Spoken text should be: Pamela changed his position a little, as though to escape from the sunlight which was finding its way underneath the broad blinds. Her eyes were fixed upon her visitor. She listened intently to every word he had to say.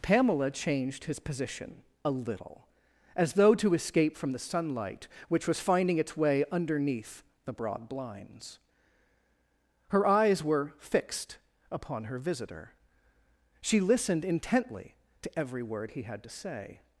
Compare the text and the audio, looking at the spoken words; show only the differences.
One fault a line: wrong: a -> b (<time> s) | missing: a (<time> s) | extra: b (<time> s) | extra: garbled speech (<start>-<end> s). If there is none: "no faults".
no faults